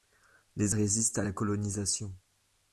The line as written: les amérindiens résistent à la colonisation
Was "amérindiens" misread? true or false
true